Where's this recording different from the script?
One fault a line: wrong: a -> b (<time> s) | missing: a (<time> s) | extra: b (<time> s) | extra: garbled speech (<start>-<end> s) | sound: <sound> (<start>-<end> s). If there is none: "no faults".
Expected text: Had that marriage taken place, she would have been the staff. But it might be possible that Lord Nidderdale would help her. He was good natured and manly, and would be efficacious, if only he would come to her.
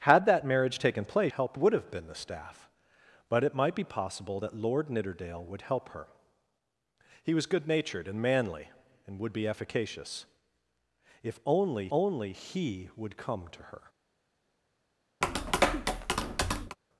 wrong: she -> help (1.3 s)
extra: only (11.9 s)
sound: tap (15.2-16.8 s)